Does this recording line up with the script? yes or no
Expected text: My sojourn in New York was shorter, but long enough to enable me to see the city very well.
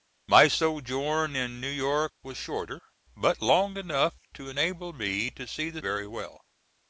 no